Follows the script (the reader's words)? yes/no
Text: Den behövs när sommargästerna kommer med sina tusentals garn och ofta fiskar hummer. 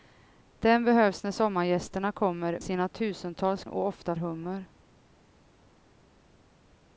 no